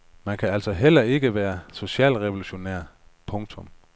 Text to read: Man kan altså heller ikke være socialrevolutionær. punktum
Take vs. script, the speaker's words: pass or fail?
pass